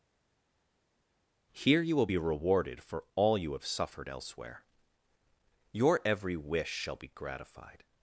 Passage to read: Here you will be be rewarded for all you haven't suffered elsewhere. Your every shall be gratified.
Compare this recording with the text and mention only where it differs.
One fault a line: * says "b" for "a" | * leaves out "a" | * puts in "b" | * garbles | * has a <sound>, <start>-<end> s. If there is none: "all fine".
* leaves out "be"
* says "have" for "haven't"
* puts in "wish"